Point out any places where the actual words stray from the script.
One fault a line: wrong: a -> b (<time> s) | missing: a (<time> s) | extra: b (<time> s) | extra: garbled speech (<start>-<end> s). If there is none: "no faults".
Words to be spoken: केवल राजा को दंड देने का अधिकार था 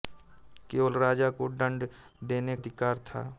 missing: का (2.6 s)